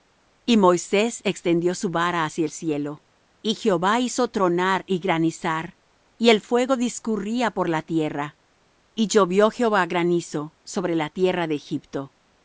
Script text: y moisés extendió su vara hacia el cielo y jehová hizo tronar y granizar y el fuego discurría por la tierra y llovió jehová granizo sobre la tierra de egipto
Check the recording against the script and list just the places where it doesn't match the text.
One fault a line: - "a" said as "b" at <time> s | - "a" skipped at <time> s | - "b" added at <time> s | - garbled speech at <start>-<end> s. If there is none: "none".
none